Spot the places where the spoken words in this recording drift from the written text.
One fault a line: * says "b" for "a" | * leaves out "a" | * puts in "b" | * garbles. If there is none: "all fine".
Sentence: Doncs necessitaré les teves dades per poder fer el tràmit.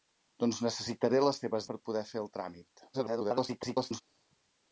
* leaves out "dades"
* garbles